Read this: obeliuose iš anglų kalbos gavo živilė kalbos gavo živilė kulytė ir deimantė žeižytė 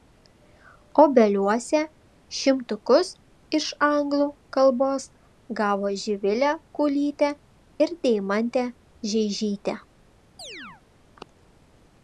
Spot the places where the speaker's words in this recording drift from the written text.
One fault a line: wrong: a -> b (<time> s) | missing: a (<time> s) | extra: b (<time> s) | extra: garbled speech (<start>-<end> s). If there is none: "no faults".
extra: šimtukus (2.4 s)
missing: kalbos gavo živilė (6.5 s)